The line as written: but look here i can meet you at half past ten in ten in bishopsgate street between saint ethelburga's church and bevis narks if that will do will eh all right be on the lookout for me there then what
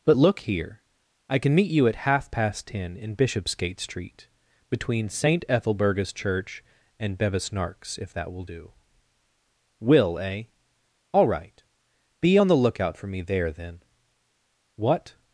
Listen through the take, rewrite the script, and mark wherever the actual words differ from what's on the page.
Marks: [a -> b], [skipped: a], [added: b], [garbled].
but look here i can meet you at half past ten in [skipped: ten in] bishopsgate street between saint ethelburga's church and bevis narks if that will do will eh all right be on the lookout for me there then what